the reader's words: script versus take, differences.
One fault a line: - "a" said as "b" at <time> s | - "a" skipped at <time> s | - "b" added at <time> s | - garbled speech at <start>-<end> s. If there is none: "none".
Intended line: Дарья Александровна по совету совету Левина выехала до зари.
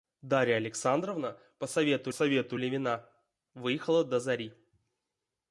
none